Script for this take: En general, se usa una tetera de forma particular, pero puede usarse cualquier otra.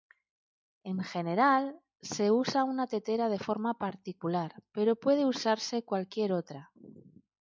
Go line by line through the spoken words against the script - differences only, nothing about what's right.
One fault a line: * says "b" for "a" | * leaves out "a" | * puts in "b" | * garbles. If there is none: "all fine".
all fine